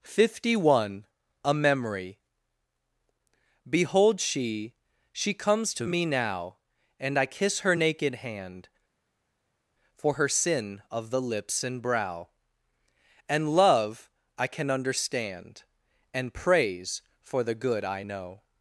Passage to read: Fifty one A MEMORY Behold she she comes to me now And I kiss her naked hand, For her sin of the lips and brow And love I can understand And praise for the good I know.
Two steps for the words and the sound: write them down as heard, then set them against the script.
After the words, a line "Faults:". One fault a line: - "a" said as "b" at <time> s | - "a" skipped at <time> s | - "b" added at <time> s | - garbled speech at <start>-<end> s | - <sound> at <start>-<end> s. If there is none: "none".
Fifty one A MEMORY Behold she she comes to me now And I kiss her naked hand, For her sin of the lips and brow And love I can understand And praise for the good I know.
Faults:
none